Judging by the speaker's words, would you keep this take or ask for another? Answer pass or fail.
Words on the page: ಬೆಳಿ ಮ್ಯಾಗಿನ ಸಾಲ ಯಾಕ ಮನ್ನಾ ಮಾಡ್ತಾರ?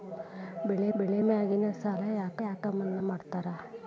fail